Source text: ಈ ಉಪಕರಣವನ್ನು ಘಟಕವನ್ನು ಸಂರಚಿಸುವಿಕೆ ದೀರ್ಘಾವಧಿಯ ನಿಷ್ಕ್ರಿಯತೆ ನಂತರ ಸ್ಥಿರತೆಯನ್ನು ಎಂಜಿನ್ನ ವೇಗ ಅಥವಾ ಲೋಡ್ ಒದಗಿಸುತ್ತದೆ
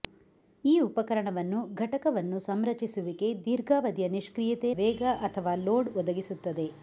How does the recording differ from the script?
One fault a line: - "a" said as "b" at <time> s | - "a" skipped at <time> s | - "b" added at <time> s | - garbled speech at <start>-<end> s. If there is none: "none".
- "ನಂತರ ಸ್ಥಿರತೆಯನ್ನು ಎಂಜಿನ್ನ" skipped at 4.7 s